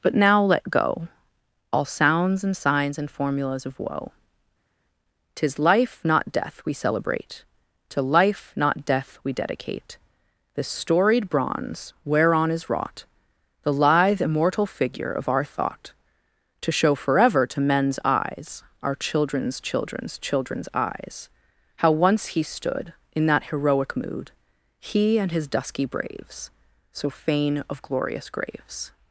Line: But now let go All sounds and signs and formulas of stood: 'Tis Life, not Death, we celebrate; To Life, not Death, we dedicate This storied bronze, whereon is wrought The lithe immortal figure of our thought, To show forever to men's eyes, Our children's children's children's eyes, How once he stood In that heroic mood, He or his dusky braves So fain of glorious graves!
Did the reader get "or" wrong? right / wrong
wrong